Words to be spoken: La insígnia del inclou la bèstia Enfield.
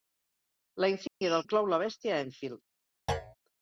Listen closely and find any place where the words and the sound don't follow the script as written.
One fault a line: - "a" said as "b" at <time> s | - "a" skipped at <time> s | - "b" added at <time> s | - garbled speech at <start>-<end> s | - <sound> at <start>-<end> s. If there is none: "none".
- dropout at 1.1-1.2 s
- thud at 3.1-3.4 s